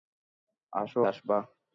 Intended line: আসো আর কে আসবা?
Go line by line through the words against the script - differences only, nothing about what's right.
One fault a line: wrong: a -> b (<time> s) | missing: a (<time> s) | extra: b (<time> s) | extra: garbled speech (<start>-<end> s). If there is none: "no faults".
missing: আর কে (1.0 s)